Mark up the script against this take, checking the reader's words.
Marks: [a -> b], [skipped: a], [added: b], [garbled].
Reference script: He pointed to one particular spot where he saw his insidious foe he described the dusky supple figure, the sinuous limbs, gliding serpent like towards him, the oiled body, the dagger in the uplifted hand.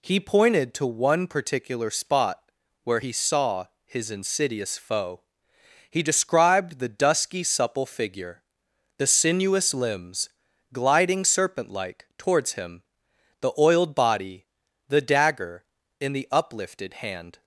He pointed to one particular spot where he saw his insidious foe he described the dusky supple figure, the sinuous limbs, gliding serpent like towards him, the oiled body, the dagger in the uplifted hand.